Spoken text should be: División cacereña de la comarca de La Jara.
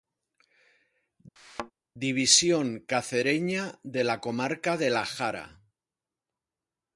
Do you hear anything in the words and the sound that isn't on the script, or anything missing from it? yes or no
yes